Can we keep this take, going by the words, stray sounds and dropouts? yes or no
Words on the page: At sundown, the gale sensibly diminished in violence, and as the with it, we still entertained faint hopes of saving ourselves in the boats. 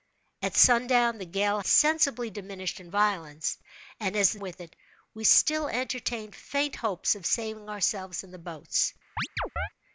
no